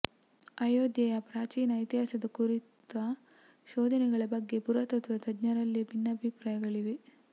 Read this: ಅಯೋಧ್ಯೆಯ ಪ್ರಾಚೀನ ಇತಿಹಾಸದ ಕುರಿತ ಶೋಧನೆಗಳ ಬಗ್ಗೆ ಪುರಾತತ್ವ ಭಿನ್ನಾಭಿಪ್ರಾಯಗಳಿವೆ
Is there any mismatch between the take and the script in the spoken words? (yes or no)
yes